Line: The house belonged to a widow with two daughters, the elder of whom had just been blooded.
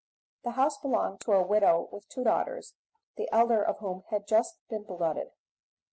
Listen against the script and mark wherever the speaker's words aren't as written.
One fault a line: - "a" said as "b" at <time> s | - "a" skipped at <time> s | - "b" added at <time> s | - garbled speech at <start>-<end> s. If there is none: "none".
none